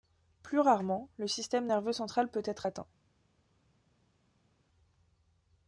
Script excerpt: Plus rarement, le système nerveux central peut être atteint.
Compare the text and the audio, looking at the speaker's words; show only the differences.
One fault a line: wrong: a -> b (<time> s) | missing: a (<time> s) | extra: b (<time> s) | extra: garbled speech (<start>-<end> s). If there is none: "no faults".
no faults